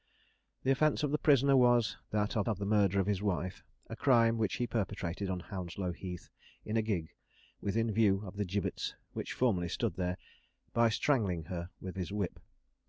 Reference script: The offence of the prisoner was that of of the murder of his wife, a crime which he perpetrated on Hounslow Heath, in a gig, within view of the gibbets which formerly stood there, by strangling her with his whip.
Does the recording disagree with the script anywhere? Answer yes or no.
no